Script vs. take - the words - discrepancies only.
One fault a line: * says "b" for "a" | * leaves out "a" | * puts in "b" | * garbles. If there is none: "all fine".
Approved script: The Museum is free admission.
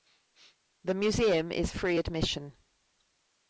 all fine